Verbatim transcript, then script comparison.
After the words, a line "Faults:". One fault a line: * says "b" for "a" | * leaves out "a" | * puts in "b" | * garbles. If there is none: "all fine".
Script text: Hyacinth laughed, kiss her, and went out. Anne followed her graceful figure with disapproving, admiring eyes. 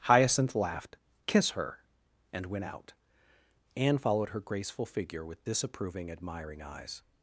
Hyacinth laughed, kiss her, and went out. Anne followed her graceful figure with disapproving, admiring eyes.
Faults:
all fine